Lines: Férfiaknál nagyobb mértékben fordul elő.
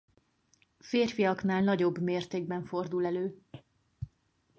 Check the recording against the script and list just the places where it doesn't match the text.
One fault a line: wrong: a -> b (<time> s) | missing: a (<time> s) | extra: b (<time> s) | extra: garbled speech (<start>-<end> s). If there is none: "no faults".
no faults